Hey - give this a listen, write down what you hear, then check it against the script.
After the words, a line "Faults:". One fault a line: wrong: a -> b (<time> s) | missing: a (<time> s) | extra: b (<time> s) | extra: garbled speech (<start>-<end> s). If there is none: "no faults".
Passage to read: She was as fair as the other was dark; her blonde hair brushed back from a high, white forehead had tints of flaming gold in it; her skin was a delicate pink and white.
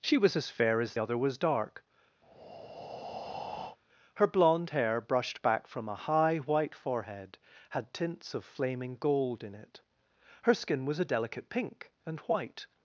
She was as fair as other was dark; her blonde hair brushed back from a high, white forehead had tints of flaming gold in it; her skin was a delicate pink and white.
Faults:
missing: the (1.0 s)